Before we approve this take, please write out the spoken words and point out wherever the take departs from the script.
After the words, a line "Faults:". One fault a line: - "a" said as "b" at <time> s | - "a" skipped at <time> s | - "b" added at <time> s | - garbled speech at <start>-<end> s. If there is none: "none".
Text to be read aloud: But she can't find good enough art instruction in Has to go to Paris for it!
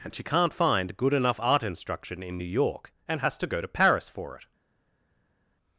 And she can't find good enough art instruction in New York, and has to go to Paris for it!
Faults:
- "But" said as "And" at 0.0 s
- "New York and" added at 2.4 s